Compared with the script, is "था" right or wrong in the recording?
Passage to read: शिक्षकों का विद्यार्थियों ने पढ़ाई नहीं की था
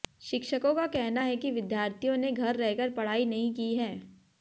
wrong